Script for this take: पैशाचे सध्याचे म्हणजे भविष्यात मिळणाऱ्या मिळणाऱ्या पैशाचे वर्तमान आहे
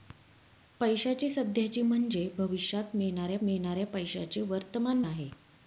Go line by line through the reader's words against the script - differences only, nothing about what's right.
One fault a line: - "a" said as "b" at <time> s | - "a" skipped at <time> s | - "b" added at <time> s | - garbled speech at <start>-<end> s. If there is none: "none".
none